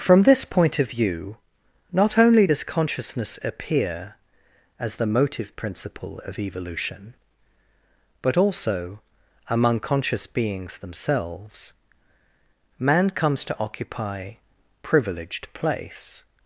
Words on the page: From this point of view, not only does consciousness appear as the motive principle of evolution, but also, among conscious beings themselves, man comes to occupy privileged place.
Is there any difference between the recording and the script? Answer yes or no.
no